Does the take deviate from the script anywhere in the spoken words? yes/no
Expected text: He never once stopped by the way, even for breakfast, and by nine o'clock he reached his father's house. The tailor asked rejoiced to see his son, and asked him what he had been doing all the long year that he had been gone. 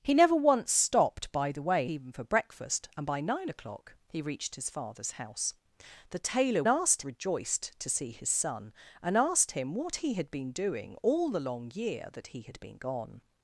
no